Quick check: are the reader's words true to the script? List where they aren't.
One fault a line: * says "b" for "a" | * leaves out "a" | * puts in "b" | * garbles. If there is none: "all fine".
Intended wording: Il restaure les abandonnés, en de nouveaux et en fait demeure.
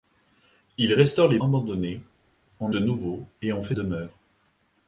all fine